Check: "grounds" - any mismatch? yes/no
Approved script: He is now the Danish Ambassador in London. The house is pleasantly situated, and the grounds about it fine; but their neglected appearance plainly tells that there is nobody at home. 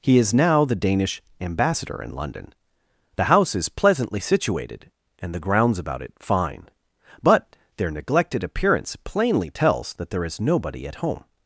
no